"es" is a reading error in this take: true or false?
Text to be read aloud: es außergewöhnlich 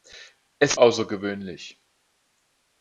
false